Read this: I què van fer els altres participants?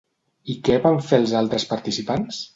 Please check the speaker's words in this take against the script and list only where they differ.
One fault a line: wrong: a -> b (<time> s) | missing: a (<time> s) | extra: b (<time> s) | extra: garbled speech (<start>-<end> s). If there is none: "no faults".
no faults